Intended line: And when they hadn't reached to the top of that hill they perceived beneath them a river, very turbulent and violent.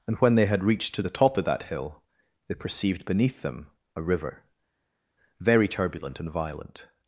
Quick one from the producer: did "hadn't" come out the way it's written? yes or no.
no